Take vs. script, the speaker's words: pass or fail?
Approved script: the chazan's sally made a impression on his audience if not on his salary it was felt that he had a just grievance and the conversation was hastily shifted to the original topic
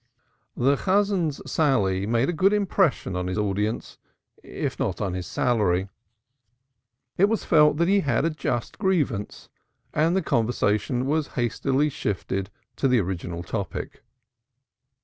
fail